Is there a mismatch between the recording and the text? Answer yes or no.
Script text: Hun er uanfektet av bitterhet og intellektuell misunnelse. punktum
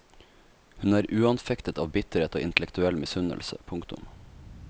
no